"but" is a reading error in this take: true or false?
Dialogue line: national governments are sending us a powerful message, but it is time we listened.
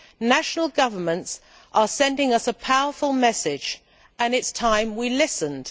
true